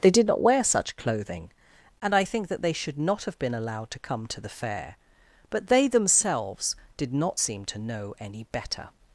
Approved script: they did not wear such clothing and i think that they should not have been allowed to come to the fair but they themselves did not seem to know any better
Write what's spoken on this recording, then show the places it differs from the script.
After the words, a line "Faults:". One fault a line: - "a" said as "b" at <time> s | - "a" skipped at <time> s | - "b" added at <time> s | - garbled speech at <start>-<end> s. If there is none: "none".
they did not wear such clothing and i think that they should not have been allowed to come to the fair but they themselves did not seem to know any better
Faults:
none